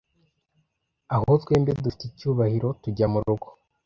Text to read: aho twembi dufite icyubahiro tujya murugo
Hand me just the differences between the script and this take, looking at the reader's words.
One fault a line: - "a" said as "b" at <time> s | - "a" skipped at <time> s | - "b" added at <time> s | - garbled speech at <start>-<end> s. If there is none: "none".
none